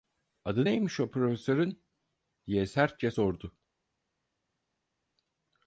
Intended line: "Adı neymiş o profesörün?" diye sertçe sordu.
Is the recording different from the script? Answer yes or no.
no